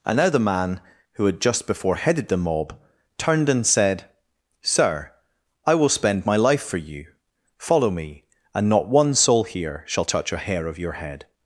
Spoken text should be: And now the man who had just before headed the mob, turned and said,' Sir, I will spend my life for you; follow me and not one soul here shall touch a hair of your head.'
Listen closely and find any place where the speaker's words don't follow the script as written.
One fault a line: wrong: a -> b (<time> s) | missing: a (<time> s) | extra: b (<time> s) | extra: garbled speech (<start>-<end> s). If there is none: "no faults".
no faults